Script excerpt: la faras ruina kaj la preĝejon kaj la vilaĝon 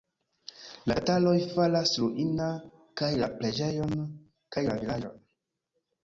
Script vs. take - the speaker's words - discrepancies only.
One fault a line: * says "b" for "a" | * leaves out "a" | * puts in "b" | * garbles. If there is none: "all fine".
* puts in "tataroj"